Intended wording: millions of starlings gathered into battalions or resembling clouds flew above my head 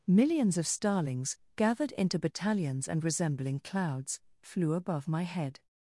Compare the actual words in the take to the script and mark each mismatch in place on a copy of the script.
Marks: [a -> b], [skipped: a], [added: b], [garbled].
millions of starlings gathered into battalions [or -> and] resembling clouds flew above my head